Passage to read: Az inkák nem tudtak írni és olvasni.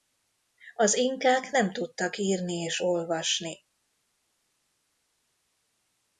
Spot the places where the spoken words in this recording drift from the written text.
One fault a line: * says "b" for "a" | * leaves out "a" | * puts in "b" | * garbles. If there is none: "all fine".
all fine